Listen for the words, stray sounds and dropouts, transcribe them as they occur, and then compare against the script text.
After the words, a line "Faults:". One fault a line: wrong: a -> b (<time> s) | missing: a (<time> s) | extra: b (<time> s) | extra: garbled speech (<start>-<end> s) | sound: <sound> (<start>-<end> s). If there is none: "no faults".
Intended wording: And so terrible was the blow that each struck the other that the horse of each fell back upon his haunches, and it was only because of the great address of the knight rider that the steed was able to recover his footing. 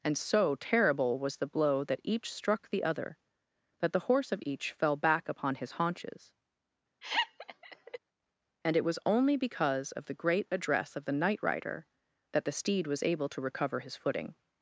And so terrible was the blow that each struck the other that the horse of each fell back upon his haunches, and it was only because of the great address of the knight rider that the steed was able to recover his footing.
Faults:
sound: laugh (7.0-8.0 s)